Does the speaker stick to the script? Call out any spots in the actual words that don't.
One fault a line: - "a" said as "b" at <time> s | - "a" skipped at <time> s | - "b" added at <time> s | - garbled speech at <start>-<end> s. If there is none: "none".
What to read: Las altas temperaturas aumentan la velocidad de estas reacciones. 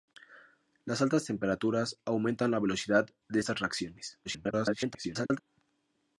- garbled speech at 4.2-5.4 s